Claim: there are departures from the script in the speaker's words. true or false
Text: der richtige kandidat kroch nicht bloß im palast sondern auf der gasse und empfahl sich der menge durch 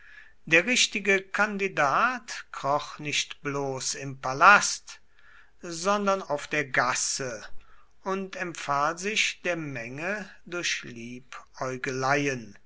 false